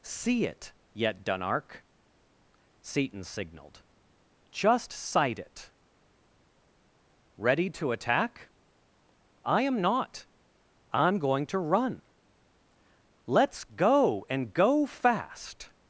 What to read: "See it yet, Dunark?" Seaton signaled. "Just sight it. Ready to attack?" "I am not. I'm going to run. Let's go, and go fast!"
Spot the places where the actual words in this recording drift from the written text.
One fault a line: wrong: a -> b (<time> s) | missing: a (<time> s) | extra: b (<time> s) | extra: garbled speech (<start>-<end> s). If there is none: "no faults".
no faults